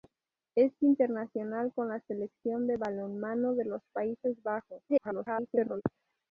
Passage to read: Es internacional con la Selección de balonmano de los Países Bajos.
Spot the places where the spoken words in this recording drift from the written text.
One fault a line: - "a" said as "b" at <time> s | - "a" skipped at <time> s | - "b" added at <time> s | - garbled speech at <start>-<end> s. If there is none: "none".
- garbled speech at 4.9-5.8 s